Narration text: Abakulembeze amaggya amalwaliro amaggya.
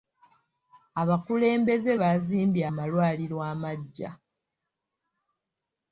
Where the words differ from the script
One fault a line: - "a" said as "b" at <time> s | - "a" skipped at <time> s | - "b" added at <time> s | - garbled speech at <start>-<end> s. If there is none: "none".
- "amaggya" said as "baazimbye" at 2.0 s